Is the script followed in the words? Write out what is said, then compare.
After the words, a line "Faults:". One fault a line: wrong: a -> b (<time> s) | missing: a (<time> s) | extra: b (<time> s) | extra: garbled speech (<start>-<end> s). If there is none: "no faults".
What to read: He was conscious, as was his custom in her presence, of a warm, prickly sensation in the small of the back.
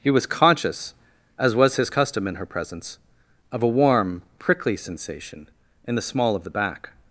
He was conscious, as was his custom in her presence, of a warm, prickly sensation in the small of the back.
Faults:
no faults